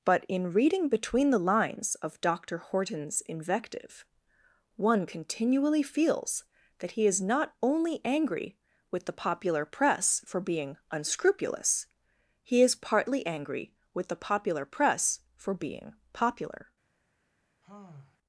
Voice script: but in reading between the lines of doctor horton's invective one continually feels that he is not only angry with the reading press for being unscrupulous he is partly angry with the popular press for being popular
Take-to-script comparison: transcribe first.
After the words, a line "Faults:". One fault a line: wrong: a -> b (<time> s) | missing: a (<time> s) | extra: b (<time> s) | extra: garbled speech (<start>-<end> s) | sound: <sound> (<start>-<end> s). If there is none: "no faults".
but in reading between the lines of doctor horton's invective one continually feels that he is not only angry with the popular press for being unscrupulous he is partly angry with the popular press for being popular
Faults:
wrong: reading -> popular (9.1 s)
sound: sigh (17.6-18.2 s)